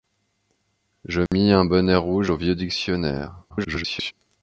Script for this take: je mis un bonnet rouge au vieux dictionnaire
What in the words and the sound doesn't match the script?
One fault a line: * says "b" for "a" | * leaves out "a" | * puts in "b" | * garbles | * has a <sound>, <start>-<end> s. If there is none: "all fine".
* has a dropout, 1.3-1.3 s
* garbles